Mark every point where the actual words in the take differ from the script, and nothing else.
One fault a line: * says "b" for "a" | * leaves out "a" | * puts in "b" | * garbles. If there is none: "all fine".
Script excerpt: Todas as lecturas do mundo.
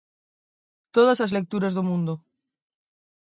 all fine